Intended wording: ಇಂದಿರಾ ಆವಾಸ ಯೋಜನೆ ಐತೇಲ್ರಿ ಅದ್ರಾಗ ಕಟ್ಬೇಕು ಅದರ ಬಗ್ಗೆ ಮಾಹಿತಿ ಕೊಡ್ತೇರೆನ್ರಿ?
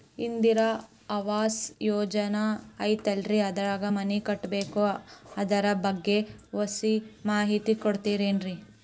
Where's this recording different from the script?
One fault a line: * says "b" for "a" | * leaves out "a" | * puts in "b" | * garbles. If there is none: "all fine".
* puts in "ಮನಿ"
* puts in "ಒಸಿ"